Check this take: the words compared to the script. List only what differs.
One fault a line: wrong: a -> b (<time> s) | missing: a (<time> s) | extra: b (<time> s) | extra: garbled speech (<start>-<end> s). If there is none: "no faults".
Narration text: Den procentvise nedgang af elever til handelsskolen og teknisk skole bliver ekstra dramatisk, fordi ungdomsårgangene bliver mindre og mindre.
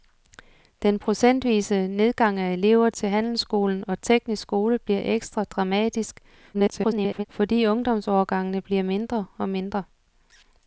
extra: garbled speech (6.5-7.3 s)